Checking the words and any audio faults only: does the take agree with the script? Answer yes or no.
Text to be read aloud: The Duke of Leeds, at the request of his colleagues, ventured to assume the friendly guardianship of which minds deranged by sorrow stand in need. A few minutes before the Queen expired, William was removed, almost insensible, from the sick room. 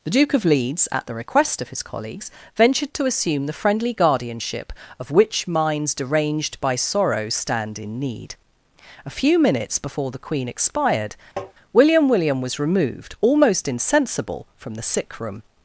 no